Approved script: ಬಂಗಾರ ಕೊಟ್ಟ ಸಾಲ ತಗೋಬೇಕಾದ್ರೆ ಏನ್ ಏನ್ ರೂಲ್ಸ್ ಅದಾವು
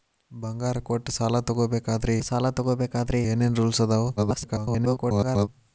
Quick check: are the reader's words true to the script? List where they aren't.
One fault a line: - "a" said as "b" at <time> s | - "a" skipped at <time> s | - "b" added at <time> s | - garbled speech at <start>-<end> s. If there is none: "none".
- "ಸಾಲ ತಗೋಬೇಕಾದ್ರೆ" added at 2.2 s
- garbled speech at 4.2-5.5 s